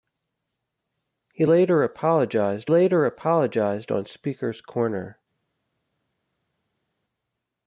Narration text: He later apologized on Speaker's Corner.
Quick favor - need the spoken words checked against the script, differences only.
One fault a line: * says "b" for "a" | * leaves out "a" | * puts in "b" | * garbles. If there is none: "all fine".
* puts in "later apologized"